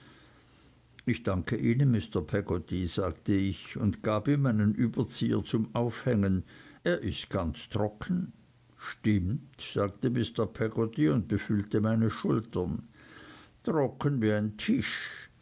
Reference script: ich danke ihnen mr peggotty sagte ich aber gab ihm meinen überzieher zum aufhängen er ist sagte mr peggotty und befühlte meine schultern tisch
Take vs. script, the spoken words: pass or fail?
fail